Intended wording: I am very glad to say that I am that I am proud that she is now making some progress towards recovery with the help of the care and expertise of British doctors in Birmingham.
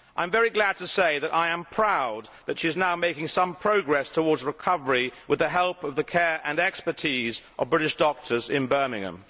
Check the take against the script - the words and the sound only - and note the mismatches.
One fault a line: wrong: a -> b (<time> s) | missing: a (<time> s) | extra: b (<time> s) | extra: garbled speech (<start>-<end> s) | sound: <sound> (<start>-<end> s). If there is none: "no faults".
missing: that I am (1.6 s)